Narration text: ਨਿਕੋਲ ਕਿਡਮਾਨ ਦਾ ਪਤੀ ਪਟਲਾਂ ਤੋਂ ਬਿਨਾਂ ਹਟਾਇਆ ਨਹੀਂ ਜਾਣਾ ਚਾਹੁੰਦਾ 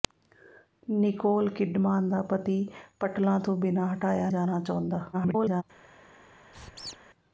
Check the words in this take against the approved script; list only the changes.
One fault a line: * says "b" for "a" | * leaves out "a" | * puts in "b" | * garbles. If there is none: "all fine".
* leaves out "ਨਹੀਂ"
* garbles